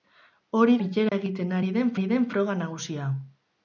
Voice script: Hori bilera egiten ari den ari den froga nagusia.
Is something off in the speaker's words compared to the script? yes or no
no